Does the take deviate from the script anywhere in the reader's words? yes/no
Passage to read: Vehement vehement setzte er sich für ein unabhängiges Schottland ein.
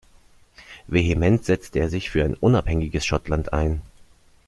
yes